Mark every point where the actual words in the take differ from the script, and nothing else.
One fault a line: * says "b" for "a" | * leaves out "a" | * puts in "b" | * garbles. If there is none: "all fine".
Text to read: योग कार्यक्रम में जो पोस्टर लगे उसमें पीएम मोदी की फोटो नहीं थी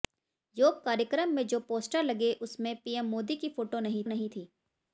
* puts in "नहीं"